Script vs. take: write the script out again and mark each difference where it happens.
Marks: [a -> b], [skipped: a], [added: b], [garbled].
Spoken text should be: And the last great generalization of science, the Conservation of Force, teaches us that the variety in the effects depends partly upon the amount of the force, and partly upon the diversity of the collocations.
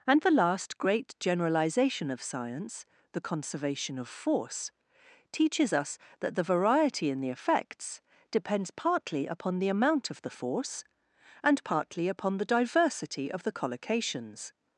And the last great generalization of science, the Conservation of Force, teaches us that the variety in the effects depends partly upon the amount of the force, and partly upon the diversity of the collocations.